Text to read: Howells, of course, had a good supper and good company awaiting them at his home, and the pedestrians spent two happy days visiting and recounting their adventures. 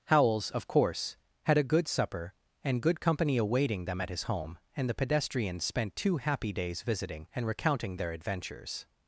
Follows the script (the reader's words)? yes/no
yes